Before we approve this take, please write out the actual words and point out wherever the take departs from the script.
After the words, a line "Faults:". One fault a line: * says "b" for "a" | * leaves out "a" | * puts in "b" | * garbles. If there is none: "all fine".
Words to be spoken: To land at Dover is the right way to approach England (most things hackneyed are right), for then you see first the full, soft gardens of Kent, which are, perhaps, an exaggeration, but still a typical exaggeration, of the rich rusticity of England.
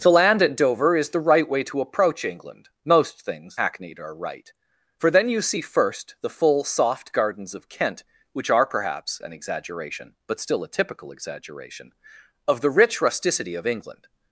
To land at Dover is the right way to approach England (most things hackneyed are right), for then you see first the full, soft gardens of Kent, which are, perhaps, an exaggeration, but still a typical exaggeration, of the rich rusticity of England.
Faults:
all fine